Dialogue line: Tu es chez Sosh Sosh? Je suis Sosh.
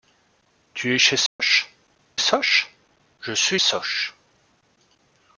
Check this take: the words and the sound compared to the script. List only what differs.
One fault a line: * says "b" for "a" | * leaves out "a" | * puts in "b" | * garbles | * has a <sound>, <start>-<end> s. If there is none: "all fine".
* has a dropout, 1.3-1.4 s